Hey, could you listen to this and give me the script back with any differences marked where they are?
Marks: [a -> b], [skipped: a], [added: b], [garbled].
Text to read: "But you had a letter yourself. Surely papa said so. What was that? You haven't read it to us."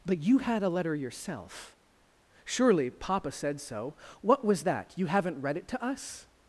"But you had a letter yourself. Surely papa said so. What was that? You haven't read it to us."